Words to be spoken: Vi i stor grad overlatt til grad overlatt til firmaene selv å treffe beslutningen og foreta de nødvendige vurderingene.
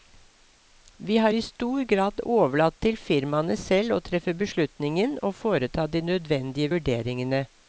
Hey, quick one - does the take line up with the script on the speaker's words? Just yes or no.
no